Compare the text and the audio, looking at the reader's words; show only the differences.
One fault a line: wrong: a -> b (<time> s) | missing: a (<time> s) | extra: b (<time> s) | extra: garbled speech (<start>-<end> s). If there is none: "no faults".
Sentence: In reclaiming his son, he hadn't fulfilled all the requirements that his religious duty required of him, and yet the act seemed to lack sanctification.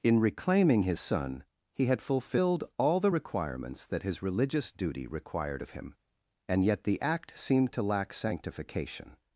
wrong: hadn't -> had (1.9 s)